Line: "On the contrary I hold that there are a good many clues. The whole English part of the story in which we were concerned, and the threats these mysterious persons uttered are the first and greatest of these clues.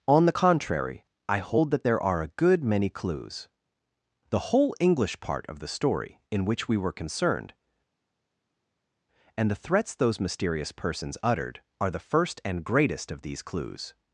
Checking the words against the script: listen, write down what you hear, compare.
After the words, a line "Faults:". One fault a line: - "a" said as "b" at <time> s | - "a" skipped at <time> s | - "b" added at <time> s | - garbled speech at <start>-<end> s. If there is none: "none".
"On the contrary I hold that there are a good many clues. The whole English part of the story in which we were concerned, and the threats those mysterious persons uttered are the first and greatest of these clues.
Faults:
- "these" said as "those" at 9.9 s